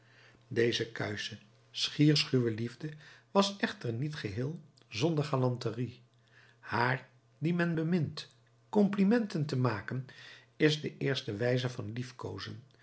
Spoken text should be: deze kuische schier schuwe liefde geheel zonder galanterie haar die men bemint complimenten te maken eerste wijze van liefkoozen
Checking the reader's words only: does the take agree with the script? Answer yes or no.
no